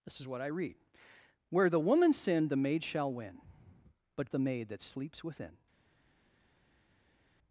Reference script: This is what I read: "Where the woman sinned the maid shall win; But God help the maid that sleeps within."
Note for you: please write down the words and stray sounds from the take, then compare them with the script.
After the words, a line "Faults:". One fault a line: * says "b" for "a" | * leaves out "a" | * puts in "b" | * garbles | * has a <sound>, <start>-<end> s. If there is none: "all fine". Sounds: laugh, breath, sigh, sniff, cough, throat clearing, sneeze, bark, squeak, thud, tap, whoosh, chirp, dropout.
This is what I read: "Where the woman sinned the maid shall win; But The maid that sleeps within."
Faults:
* leaves out "God help"